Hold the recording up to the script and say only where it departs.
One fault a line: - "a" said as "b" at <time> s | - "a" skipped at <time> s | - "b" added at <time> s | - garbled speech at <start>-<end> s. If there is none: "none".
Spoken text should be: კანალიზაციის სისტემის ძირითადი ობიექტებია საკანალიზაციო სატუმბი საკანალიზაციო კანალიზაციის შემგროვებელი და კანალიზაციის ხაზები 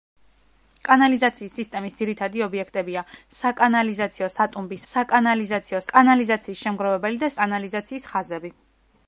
none